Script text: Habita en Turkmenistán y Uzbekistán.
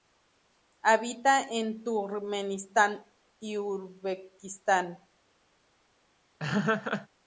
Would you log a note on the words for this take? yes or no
no